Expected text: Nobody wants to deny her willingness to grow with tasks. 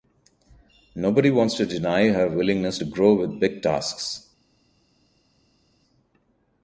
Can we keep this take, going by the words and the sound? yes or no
no